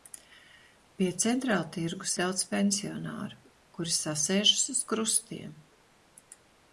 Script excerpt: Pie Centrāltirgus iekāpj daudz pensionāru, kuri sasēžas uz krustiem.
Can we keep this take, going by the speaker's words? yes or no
no